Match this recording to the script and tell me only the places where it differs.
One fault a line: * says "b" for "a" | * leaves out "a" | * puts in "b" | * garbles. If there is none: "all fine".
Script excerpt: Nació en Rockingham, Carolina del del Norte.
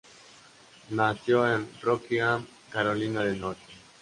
* leaves out "del"